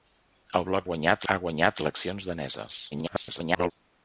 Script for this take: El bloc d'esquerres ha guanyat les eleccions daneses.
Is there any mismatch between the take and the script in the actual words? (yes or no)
yes